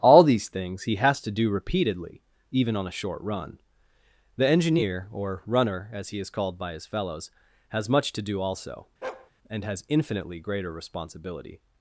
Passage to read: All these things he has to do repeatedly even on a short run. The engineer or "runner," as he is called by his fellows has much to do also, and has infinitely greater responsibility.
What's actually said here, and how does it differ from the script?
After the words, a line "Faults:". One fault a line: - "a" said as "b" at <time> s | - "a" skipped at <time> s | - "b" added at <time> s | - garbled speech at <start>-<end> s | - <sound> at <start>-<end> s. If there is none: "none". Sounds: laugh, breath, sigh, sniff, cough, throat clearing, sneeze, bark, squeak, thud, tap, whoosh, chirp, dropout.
All these things he has to do repeatedly even on a short run. The engineer or "runner," as he is called by his fellows has much to do also, and has infinitely greater responsibility.
Faults:
- bark at 9.0-9.3 s